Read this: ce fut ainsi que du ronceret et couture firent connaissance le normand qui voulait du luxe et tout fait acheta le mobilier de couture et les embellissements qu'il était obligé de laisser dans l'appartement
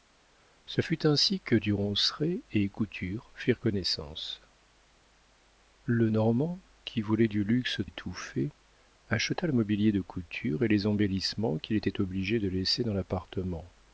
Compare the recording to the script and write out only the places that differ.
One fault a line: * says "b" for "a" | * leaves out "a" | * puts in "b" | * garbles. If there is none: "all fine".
all fine